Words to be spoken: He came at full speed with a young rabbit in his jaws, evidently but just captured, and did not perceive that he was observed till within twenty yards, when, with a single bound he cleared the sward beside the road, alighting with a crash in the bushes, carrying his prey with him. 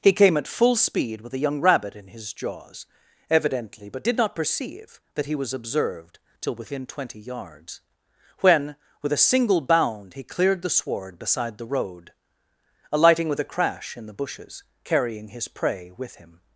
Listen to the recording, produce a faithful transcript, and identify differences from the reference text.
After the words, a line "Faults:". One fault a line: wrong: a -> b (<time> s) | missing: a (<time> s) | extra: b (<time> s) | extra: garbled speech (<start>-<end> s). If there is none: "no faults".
He came at full speed with a young rabbit in his jaws, evidently but did not perceive that he was observed till within twenty yards, when, with a single bound he cleared the sward beside the road, alighting with a crash in the bushes, carrying his prey with him.
Faults:
missing: just captured and (4.0 s)